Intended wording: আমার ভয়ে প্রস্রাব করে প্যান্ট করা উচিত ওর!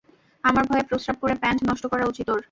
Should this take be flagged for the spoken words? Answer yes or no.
yes